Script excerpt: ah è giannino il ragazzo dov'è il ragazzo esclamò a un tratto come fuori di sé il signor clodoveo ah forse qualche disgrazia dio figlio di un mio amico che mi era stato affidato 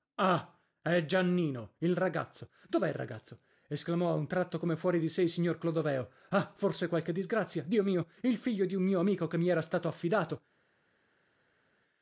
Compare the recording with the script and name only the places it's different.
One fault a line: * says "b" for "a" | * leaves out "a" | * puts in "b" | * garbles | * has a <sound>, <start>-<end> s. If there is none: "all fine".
* puts in "mio il"